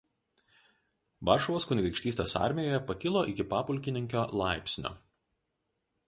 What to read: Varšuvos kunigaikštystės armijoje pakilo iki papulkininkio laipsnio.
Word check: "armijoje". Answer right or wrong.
right